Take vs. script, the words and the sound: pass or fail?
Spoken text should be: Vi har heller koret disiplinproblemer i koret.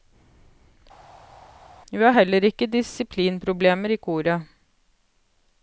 fail